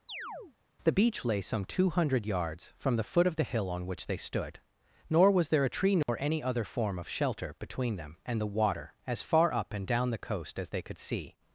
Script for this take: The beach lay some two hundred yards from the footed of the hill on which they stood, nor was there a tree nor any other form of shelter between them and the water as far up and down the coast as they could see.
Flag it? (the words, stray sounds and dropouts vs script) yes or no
yes